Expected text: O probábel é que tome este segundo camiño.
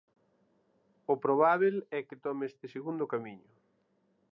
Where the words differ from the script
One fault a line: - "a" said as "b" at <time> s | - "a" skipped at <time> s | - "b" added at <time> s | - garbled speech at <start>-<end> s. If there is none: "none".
none